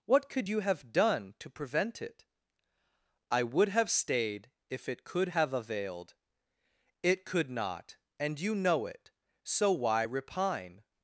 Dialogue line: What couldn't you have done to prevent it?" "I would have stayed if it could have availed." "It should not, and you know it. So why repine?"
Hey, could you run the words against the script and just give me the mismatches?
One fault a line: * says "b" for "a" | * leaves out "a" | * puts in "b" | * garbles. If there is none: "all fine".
* says "could" for "couldn't"
* says "could" for "should"